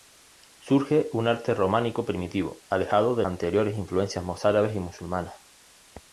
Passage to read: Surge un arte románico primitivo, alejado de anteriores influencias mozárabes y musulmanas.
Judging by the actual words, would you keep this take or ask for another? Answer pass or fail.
pass